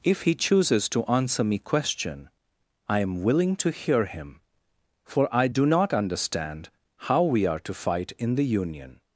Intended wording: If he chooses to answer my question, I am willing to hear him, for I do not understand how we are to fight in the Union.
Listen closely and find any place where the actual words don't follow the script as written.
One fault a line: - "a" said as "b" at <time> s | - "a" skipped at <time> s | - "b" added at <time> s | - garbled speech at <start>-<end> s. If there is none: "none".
- "my" said as "me" at 1.4 s